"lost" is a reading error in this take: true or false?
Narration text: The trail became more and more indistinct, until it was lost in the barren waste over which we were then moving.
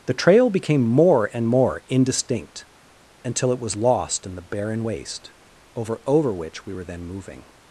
false